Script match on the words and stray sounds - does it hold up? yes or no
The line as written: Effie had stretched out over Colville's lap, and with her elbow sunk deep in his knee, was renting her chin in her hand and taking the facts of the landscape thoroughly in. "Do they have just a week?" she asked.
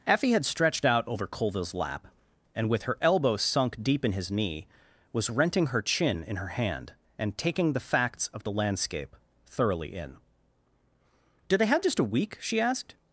yes